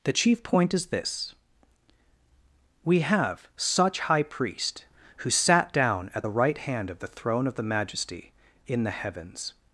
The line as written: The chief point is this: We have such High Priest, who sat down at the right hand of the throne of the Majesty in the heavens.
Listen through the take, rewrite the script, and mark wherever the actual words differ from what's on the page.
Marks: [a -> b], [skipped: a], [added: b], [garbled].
The chief point is this: We have such High Priest, who sat down at the right hand of the throne of the Majesty in the heavens.